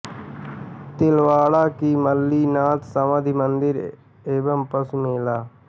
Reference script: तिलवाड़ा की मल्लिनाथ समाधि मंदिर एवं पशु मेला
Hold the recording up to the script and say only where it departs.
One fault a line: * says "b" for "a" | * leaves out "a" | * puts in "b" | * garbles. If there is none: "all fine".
all fine